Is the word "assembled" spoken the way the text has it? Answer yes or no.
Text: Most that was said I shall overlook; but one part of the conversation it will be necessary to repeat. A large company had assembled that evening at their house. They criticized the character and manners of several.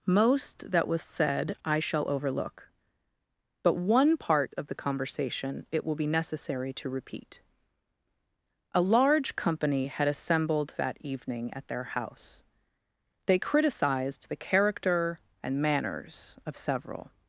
yes